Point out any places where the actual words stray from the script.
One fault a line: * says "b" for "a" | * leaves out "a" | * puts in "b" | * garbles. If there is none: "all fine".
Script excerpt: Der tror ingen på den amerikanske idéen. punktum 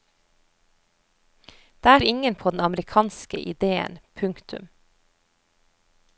* leaves out "tror"